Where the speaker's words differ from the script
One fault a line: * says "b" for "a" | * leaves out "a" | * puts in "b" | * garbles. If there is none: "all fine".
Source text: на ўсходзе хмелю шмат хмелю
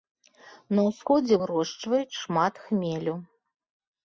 * says "вырошчваюць" for "хмелю"